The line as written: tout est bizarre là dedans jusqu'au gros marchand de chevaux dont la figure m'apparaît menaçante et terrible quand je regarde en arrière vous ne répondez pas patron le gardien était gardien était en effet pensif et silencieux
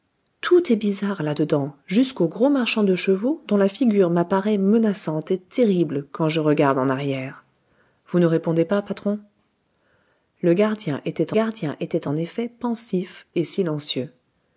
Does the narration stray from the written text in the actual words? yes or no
no